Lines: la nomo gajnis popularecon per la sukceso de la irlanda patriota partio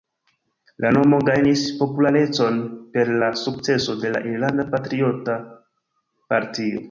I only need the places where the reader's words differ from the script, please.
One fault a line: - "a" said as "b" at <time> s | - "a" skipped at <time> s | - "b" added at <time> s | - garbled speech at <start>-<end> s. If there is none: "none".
none